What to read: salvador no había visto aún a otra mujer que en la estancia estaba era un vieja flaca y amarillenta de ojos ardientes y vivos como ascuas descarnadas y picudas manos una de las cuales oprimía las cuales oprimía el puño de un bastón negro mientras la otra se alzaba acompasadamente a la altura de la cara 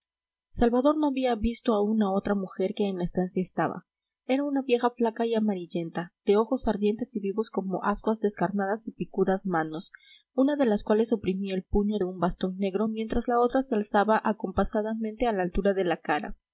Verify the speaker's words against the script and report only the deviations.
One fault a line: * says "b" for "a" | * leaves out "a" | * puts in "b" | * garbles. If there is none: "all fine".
* says "una" for "un"
* leaves out "las cuales oprimía"